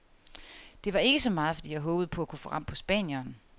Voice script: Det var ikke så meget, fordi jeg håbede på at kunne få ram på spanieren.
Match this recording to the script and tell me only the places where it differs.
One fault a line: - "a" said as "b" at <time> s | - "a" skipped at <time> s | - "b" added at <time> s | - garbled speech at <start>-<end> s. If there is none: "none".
none